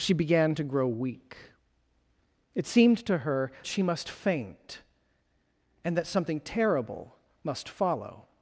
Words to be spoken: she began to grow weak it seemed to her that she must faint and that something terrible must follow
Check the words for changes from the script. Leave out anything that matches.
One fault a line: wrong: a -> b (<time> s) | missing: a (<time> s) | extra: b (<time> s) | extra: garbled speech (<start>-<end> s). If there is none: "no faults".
missing: that (3.5 s)